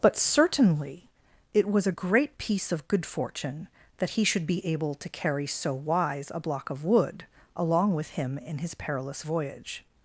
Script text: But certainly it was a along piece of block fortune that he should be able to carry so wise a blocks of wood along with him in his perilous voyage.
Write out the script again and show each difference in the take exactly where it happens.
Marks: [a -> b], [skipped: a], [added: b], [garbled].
But certainly it was a [along -> great] piece of [block -> good] fortune that he should be able to carry so wise a [blocks -> block] of wood along with him in his perilous voyage.